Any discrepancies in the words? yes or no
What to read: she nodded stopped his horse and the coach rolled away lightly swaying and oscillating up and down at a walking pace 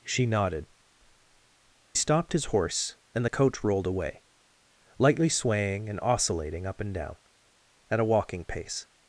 no